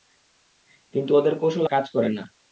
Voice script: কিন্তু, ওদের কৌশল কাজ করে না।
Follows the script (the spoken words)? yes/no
yes